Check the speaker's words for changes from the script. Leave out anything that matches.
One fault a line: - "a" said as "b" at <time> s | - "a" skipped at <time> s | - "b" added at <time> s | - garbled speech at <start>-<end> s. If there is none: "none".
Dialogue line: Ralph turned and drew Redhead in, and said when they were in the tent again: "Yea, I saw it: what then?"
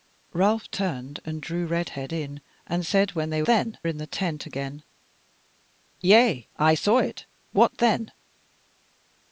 - "were" said as "then" at 3.5 s